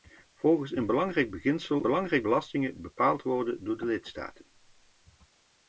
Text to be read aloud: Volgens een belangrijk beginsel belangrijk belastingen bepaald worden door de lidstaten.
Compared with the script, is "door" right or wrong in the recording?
right